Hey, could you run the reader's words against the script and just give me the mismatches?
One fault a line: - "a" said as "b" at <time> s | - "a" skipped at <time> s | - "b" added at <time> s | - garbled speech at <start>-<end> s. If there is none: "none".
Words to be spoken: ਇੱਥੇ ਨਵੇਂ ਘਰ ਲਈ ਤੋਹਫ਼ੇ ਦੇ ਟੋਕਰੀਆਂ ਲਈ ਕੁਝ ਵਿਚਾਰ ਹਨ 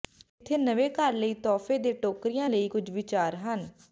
none